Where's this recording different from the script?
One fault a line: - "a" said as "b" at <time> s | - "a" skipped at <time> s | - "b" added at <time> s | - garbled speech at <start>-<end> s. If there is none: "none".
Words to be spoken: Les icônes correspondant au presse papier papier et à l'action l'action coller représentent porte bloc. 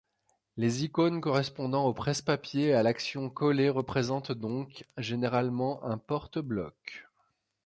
- "papier" skipped at 2.7 s
- "l'action" skipped at 3.3 s
- "donc généralement un" added at 4.3 s